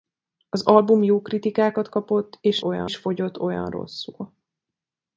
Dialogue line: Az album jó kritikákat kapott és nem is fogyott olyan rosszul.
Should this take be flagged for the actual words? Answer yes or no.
yes